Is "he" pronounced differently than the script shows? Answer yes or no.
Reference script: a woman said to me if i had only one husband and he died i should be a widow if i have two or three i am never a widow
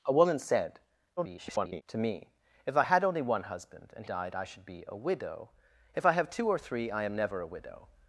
yes